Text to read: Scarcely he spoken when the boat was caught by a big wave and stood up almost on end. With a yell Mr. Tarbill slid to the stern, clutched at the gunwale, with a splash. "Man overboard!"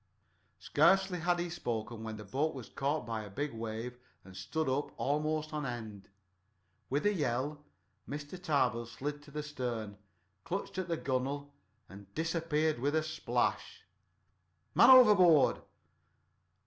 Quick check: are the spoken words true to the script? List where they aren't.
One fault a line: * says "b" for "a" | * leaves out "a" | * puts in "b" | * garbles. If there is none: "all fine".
* puts in "had"
* puts in "and disappeared"